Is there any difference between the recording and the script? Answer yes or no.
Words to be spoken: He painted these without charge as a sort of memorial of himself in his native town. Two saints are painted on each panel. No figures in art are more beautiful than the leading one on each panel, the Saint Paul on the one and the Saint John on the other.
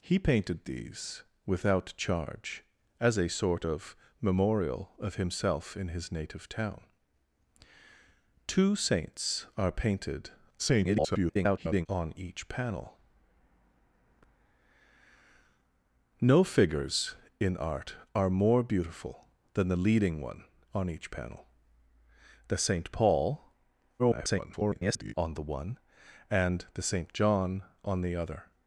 yes